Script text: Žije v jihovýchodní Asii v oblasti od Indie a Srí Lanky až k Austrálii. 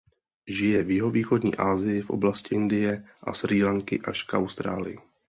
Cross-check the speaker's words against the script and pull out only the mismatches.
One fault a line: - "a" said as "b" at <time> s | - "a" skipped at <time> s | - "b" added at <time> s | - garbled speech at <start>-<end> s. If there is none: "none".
- "od" skipped at 2.5 s